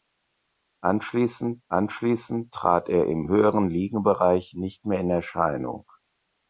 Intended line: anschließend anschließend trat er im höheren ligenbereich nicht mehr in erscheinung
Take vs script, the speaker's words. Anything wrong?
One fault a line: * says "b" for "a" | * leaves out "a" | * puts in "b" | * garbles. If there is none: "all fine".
all fine